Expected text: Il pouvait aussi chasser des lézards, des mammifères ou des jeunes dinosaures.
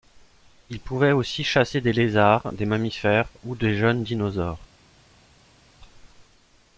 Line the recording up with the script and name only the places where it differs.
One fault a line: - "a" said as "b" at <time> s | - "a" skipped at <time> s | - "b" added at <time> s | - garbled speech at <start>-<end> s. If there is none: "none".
none